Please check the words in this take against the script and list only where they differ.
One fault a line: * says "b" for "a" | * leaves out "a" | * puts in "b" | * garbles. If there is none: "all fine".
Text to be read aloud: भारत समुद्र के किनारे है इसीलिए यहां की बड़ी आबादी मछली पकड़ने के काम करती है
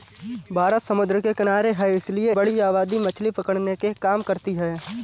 * leaves out "यहां की"